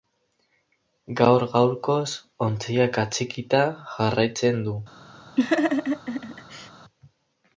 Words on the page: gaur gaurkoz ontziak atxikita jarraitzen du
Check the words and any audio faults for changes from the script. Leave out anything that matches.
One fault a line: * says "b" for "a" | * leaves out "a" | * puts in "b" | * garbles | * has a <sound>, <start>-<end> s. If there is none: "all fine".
* has a laugh, 5.4-6.7 s